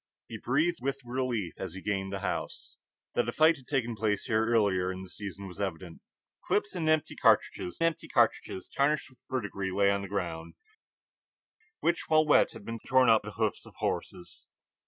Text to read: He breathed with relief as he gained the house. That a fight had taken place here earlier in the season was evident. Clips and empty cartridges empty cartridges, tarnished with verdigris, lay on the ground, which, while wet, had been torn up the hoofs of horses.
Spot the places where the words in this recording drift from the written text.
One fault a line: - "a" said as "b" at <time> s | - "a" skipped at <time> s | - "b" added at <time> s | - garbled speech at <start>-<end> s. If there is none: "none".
none